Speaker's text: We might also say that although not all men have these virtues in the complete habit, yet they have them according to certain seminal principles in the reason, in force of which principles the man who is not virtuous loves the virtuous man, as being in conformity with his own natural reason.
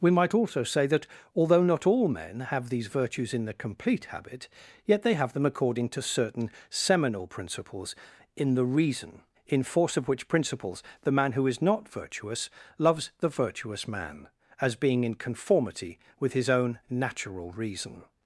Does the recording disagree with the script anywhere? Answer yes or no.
no